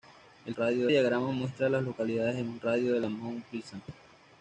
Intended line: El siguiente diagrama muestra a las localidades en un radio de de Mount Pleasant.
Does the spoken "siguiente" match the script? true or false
false